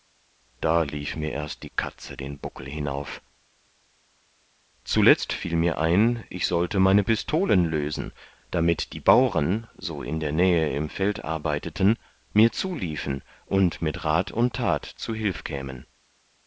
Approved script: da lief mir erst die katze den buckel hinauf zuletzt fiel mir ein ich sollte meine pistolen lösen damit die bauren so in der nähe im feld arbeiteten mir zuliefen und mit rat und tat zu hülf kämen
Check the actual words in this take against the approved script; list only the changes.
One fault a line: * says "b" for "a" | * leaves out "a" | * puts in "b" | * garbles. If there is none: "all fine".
all fine